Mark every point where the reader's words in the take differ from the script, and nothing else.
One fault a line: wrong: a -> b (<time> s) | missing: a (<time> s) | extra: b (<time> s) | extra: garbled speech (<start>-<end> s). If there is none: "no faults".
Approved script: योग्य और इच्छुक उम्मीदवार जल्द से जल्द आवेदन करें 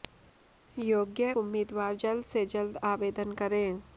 missing: और इच्छुक (1.3 s)